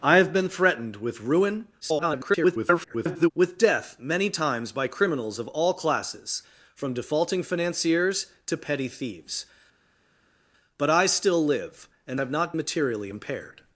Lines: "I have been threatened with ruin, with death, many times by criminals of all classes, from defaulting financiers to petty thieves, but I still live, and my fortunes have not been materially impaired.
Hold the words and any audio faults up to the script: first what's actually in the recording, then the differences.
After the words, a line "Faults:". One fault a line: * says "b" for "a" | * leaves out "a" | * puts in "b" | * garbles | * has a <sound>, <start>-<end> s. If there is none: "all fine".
"I have been threatened with ruin, [garbled] with death, many times by criminals of all classes, from defaulting financiers to petty thieves, but I still live, and have not materially impaired.
Faults:
* garbles
* leaves out "my fortunes"
* leaves out "been"